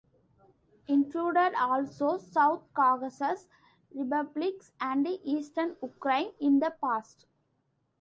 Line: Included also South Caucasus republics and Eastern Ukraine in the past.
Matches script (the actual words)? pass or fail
pass